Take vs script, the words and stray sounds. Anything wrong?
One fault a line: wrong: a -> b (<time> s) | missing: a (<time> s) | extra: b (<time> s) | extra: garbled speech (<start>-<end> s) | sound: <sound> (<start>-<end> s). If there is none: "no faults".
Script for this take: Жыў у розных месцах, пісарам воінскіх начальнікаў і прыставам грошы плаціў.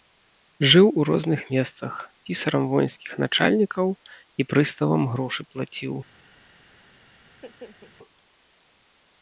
sound: laugh (7.3-7.9 s)